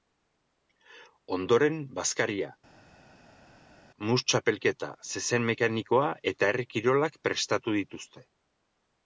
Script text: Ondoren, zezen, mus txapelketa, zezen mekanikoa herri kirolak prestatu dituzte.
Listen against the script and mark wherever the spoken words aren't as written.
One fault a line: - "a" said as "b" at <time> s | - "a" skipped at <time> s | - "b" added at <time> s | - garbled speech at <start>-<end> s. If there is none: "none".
- "zezen" said as "bazkaria" at 2.0 s
- "eta" added at 6.3 s